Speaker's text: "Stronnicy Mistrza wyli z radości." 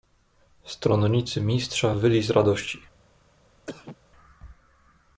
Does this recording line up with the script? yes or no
yes